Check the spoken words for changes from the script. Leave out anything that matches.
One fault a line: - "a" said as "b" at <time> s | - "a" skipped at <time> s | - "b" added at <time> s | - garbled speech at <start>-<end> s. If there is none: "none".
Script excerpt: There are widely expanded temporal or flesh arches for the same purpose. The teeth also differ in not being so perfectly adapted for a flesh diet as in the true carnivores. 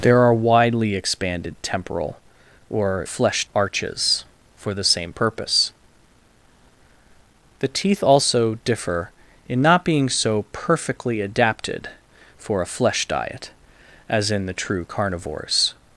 none